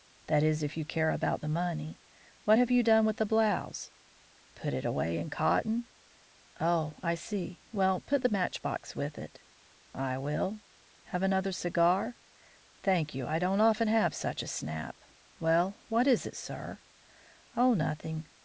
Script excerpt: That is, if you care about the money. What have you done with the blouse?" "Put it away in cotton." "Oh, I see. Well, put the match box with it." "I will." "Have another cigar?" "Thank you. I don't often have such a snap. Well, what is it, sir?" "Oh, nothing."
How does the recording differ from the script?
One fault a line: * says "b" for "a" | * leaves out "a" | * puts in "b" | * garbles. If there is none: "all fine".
all fine